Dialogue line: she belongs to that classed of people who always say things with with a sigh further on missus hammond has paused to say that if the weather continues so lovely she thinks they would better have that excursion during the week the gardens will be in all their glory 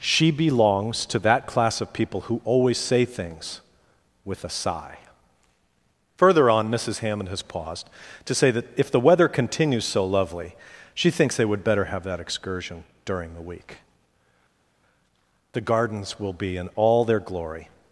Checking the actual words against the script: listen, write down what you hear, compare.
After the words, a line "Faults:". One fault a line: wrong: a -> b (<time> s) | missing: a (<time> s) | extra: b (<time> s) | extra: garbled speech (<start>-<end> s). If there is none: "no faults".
she belongs to that class of people who always say things with a sigh further on missus hammond has paused to say that if the weather continues so lovely she thinks they would better have that excursion during the week the gardens will be in all their glory
Faults:
wrong: classed -> class (1.4 s)
missing: with (4.4 s)